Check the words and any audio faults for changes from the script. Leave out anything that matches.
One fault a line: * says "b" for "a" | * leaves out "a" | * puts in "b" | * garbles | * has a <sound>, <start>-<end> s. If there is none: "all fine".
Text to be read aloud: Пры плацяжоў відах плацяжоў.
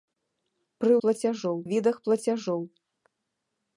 all fine